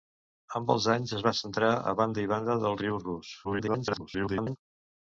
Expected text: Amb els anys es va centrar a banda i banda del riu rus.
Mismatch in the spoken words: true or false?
true